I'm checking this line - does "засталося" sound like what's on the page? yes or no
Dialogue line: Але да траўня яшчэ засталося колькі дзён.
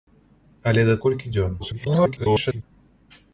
no